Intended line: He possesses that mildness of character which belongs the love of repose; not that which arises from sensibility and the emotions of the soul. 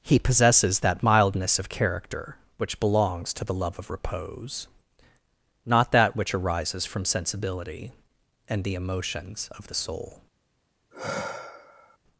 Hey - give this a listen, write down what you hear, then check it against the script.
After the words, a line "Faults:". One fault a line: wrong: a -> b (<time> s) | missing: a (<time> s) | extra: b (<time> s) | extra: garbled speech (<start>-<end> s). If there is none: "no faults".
He possesses that mildness of character which belongs to the love of repose; not that which arises from sensibility and the emotions of the soul.
Faults:
extra: to (3.3 s)